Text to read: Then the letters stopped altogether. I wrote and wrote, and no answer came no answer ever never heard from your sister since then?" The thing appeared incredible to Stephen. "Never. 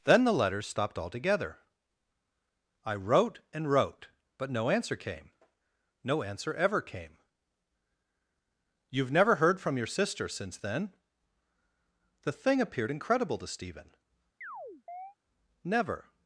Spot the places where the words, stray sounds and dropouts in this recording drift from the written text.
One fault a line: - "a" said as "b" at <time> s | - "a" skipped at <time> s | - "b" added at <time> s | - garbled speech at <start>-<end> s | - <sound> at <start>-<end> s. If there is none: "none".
- "and" said as "but" at 4.4 s
- "came You've" added at 6.8 s
- chirp at 14.4-15.2 s